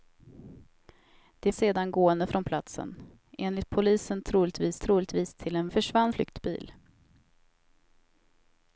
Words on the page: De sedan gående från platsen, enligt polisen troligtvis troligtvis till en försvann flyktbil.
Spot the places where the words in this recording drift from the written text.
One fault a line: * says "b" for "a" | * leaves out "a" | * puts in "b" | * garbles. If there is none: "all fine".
all fine